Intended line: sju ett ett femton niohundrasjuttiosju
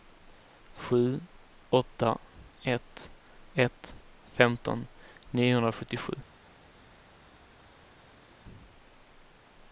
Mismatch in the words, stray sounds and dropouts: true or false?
true